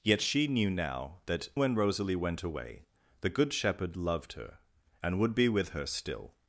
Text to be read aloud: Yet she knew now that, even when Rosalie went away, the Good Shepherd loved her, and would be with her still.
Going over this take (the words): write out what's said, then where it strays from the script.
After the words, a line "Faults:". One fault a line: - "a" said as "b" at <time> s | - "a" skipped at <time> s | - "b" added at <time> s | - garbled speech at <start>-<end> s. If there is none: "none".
Yet she knew now that, when Rosalie went away, the Good Shepherd loved her, and would be with her still.
Faults:
- "even" skipped at 1.5 s